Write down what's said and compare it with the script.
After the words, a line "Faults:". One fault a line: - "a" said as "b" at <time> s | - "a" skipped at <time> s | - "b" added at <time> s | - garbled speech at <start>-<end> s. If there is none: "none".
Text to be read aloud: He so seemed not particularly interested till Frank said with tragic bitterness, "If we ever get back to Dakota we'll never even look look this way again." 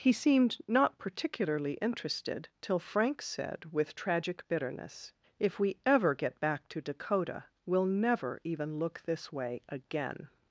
He seemed not particularly interested till Frank said with tragic bitterness, "If we ever get back to Dakota we'll never even look this way again."
Faults:
- "so" skipped at 0.1 s
- "look" skipped at 9.0 s